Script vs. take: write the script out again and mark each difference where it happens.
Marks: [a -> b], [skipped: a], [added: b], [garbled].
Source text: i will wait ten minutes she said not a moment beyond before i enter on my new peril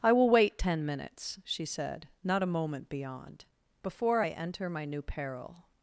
i will wait ten minutes she said not a moment beyond before i enter [skipped: on] my new peril